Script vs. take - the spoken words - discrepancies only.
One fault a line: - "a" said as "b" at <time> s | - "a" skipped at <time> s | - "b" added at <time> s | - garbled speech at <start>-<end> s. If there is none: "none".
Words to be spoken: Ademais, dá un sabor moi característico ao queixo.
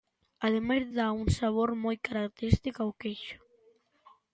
none